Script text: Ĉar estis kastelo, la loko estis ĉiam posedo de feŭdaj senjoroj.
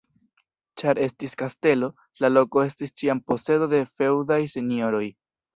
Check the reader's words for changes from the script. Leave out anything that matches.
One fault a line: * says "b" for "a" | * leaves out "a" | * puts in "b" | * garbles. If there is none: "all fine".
all fine